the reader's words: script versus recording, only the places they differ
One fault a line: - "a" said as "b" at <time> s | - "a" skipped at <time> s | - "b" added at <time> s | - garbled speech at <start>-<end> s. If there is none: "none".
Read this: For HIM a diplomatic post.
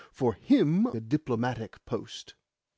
none